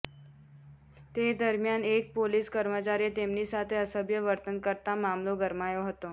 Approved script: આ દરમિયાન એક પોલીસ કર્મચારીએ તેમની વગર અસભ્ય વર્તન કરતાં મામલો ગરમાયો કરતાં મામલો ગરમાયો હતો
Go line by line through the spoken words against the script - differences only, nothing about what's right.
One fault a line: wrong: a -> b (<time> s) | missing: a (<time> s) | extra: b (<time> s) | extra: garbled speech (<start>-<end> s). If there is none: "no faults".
wrong: આ -> તે (1.1 s)
wrong: વગર -> સાથે (3.5 s)
missing: કરતાં મામલો ગરમાયો (5.9 s)